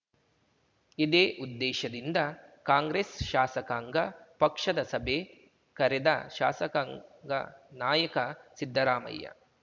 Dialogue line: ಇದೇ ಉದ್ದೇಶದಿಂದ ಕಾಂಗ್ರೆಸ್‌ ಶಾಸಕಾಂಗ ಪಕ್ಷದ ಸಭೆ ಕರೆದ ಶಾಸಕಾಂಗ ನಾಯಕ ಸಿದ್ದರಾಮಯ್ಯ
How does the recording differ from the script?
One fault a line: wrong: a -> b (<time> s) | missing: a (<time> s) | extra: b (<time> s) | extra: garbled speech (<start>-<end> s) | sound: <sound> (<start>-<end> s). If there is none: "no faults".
no faults